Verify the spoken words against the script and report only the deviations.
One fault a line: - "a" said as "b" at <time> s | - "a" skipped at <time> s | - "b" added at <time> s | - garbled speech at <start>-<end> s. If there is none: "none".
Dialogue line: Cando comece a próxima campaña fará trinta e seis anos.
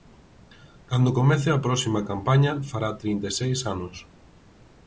none